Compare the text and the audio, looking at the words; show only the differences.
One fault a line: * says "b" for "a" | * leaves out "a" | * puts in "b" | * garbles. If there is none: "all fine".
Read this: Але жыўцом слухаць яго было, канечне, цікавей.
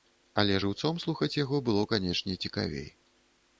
all fine